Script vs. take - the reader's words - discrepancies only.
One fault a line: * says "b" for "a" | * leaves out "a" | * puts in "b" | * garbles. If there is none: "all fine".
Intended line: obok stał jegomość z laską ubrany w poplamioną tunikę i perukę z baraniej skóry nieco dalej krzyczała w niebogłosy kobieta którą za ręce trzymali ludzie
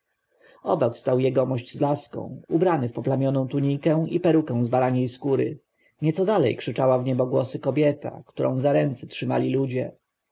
all fine